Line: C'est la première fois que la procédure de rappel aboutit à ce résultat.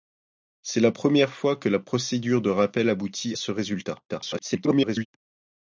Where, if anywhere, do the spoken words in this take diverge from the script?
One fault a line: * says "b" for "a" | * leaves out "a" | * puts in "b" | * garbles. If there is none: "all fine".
* leaves out "à"
* garbles